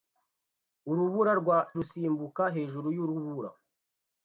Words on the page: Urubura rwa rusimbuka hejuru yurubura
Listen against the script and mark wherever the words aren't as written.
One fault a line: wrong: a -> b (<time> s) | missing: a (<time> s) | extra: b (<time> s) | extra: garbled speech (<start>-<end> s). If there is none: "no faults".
no faults